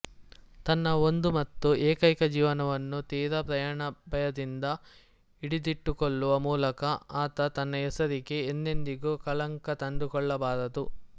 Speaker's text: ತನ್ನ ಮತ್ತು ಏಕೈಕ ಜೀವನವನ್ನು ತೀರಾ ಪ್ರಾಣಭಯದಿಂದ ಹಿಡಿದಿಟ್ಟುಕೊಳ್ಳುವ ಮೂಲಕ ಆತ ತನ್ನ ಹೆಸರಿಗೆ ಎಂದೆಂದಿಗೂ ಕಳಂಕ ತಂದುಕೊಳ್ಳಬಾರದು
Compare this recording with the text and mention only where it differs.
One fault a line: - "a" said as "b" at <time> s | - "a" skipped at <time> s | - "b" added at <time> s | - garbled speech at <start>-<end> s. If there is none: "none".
- "ಒಂದು" added at 1.0 s